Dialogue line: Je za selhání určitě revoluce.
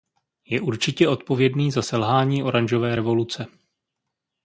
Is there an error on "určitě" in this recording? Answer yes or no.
yes